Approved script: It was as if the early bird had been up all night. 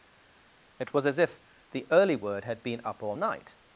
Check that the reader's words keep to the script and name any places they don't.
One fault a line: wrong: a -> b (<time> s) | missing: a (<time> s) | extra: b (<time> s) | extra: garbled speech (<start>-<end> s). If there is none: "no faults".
wrong: bird -> word (2.2 s)